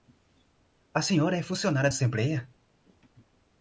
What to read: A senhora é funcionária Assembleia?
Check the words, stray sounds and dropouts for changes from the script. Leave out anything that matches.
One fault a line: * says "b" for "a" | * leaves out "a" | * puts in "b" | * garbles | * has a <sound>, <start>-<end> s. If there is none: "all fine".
all fine